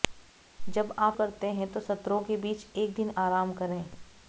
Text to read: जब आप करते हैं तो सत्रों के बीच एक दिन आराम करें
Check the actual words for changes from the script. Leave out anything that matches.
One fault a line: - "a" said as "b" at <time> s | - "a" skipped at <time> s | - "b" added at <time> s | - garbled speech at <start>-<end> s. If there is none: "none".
none